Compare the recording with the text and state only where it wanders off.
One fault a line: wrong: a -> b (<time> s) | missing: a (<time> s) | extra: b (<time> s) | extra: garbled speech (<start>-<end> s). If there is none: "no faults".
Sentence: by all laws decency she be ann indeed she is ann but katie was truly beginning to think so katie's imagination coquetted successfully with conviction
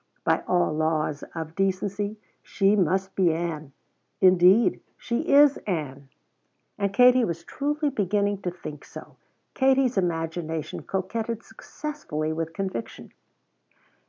extra: of (1.4 s)
extra: must (2.8 s)
wrong: but -> and (6.8 s)